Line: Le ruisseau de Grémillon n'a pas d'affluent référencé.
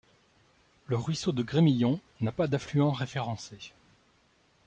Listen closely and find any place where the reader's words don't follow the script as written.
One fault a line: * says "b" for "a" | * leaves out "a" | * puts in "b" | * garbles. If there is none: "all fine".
all fine